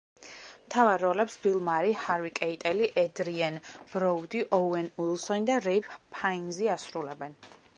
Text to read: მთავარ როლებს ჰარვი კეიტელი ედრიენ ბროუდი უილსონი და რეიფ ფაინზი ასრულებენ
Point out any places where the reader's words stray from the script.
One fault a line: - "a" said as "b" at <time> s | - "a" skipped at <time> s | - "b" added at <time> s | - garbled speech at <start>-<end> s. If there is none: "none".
- "ბილ მარი" added at 1.4 s
- "ოუენ" added at 4.6 s